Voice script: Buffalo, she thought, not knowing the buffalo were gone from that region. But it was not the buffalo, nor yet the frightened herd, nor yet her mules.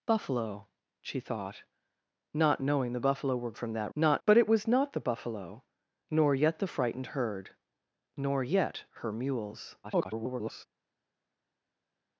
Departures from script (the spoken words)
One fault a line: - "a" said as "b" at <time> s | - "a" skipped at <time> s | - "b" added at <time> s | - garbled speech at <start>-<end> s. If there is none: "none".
- "gone" skipped at 3.5 s
- "region" said as "not" at 3.9 s
- garbled speech at 9.8-10.7 s